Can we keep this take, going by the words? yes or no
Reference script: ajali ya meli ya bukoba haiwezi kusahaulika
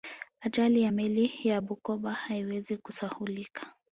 yes